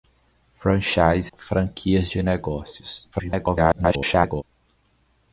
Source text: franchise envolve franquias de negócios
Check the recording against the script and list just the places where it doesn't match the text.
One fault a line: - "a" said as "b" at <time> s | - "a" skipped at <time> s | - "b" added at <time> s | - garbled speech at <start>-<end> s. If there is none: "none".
- "envolve" skipped at 1.3 s
- garbled speech at 3.1-4.4 s